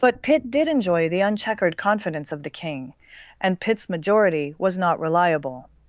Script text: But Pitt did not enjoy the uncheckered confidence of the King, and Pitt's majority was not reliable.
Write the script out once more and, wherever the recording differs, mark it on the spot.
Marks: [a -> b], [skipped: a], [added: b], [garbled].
But Pitt did [skipped: not] enjoy the uncheckered confidence of the King, and Pitt's majority was not reliable.